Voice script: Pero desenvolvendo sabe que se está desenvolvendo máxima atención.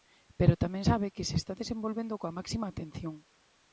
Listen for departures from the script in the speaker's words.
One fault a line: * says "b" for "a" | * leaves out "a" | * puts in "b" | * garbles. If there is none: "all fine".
* says "tamén" for "desenvolvendo"
* puts in "coa"